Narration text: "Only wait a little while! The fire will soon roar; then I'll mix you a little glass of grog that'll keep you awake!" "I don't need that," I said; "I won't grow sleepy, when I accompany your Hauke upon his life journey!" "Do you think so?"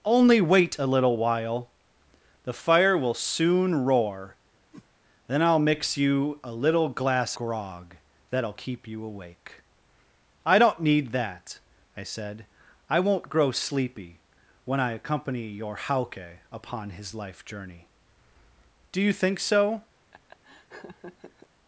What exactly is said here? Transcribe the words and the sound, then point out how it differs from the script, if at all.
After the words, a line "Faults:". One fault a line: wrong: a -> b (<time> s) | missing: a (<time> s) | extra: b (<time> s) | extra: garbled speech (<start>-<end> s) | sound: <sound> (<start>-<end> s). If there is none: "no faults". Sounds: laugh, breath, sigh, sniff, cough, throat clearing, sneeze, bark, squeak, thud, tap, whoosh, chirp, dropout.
"Only wait a little while! The fire will soon roar; then I'll mix you a little glass grog that'll keep you awake!" "I don't need that," I said; "I won't grow sleepy, when I accompany your Hauke upon his life journey!" "Do you think so?"
Faults:
sound: whoosh (4.7-4.9 s)
missing: of (7.3 s)
sound: laugh (20.1-21.5 s)